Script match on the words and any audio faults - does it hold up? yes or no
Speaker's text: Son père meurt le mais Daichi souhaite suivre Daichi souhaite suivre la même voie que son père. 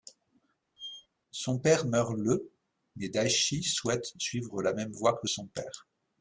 no